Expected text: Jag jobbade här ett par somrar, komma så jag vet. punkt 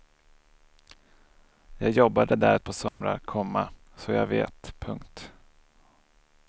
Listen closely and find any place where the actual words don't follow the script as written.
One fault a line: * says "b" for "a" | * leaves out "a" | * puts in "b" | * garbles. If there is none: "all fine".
* says "där" for "här"